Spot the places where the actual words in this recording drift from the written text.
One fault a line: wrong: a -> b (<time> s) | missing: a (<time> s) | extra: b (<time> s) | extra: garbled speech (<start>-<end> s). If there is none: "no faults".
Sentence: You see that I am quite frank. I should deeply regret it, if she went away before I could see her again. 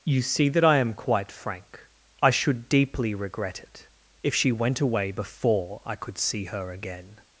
no faults